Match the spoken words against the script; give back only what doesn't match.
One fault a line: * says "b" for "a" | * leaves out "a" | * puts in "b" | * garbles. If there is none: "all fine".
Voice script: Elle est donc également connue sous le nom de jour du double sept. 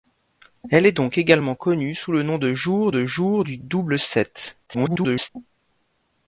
* puts in "de jour"
* garbles